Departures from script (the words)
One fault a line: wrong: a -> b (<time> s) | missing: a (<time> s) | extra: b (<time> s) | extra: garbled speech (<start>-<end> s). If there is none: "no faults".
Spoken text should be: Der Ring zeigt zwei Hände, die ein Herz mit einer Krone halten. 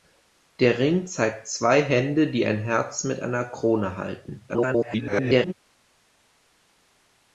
extra: garbled speech (4.5-5.5 s)